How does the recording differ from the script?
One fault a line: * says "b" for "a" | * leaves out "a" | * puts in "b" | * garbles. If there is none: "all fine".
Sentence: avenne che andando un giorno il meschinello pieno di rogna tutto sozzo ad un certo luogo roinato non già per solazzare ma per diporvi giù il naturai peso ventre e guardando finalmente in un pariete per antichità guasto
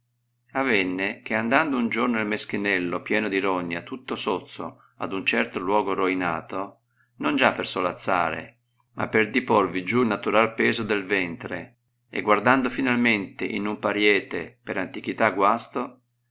* puts in "del"